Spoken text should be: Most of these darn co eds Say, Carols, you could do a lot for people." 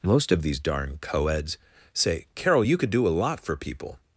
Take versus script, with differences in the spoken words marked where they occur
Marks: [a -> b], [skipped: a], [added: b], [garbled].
Most of these darn co eds Say, [Carols, -> Carol] you could do a lot for people."